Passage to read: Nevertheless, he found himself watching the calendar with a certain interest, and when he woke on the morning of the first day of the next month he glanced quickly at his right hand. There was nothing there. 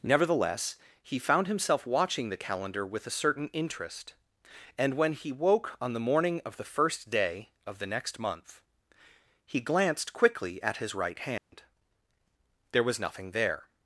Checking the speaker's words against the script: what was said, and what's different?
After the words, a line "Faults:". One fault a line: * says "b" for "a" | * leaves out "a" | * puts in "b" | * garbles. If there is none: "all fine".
Nevertheless, he found himself watching the calendar with a certain interest, and when he woke on the morning of the first day of the next month he glanced quickly at his right hand. There was nothing there.
Faults:
all fine